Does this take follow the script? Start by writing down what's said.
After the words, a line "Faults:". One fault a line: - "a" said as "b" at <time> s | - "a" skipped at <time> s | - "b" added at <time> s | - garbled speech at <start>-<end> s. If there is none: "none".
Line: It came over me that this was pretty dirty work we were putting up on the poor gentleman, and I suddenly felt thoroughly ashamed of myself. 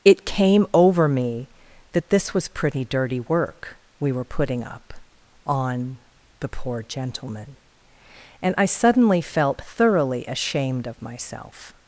It came over me that this was pretty dirty work we were putting up on the poor gentleman, and I suddenly felt thoroughly ashamed of myself.
Faults:
none